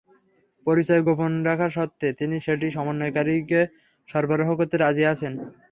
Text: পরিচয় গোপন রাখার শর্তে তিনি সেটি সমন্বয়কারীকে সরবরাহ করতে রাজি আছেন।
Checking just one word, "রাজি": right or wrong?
right